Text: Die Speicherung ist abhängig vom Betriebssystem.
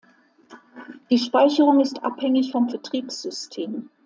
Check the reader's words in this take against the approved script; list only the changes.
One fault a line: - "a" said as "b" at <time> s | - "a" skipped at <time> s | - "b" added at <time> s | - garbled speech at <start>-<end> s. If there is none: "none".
none